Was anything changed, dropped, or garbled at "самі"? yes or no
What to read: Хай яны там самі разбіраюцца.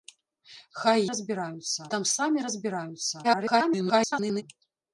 no